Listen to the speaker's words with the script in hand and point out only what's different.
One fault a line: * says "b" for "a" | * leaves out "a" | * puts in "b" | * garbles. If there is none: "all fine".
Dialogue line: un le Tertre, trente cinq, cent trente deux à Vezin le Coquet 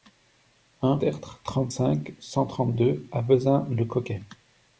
* leaves out "le"